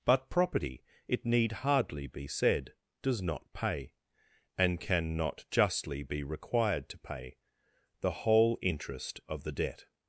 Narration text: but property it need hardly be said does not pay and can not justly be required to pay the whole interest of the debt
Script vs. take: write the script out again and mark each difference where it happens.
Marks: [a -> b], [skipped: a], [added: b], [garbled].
but property it need hardly be said does not pay and can not justly be required to pay the whole interest of the debt